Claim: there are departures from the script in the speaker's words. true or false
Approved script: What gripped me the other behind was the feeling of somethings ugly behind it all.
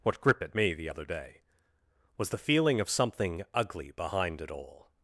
true